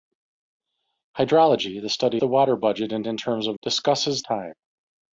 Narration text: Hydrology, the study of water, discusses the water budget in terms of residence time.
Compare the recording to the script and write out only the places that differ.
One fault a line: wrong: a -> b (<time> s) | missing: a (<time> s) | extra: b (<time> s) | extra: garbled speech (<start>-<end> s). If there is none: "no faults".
missing: of water discusses (2.2 s)
extra: in (3.1 s)
wrong: residence -> discusses (3.6 s)